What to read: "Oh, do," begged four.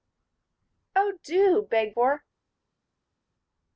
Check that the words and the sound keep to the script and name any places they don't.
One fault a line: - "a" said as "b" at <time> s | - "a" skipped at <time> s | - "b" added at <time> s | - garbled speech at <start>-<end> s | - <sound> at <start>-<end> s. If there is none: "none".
none